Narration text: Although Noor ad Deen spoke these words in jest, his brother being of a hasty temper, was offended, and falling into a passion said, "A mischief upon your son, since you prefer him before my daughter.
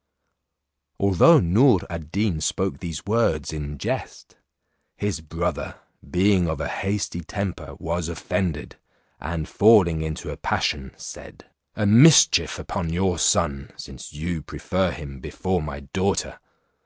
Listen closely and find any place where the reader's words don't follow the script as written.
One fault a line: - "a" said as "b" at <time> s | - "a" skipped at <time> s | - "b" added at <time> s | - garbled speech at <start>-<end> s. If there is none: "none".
none